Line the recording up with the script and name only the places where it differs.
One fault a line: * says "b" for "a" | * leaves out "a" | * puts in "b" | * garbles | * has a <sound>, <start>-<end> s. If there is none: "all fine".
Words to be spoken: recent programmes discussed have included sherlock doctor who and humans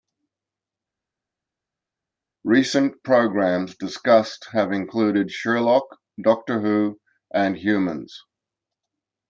all fine